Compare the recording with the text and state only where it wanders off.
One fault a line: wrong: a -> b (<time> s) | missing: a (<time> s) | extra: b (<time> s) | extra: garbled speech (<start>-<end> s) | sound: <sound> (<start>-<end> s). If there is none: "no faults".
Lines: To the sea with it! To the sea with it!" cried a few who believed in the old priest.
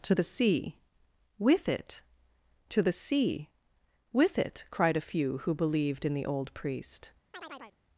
sound: chirp (7.3-7.8 s)